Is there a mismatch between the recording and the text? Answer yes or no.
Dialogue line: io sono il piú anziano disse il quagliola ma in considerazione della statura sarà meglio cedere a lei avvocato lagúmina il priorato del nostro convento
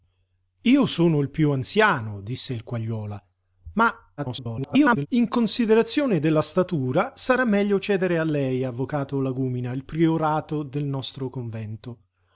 yes